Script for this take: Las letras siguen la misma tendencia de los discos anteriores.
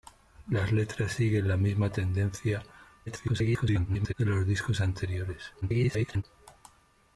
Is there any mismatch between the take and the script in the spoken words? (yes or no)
yes